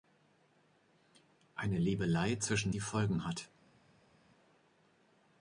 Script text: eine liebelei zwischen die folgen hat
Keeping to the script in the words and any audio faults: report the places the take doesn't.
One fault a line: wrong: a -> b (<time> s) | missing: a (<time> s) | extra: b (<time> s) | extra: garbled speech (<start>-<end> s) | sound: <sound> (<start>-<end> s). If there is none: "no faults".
no faults